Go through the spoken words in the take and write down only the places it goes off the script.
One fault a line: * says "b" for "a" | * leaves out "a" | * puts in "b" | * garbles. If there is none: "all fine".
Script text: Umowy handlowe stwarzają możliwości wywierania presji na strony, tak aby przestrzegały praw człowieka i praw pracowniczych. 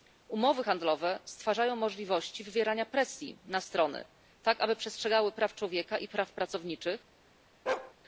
all fine